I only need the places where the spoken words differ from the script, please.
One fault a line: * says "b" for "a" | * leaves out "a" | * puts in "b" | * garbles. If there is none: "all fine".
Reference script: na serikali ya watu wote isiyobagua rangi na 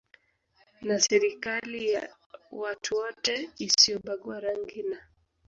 all fine